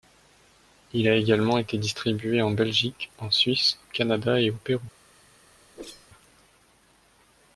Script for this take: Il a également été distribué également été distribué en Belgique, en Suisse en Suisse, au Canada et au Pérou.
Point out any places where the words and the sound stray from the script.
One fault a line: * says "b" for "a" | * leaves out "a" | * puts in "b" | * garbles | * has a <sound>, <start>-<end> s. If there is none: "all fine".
* leaves out "également été distribué"
* leaves out "en Suisse"
* has a whoosh, 5.7-6.1 s